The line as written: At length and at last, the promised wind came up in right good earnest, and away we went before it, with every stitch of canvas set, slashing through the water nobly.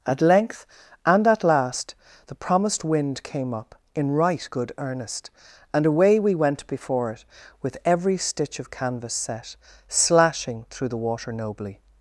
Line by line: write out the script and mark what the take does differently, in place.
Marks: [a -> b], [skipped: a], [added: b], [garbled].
At length and at last, the promised wind came up in right good earnest, and away we went before it, with every stitch of canvas set, slashing through the water nobly.